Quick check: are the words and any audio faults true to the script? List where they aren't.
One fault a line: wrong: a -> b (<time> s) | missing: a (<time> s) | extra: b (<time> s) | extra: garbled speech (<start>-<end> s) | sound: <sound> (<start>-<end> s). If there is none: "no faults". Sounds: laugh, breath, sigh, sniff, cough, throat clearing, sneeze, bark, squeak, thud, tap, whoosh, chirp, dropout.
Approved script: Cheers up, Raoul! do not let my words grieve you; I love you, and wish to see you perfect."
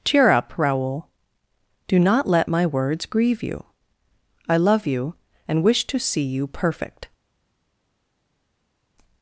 wrong: Cheers -> Cheer (0.0 s)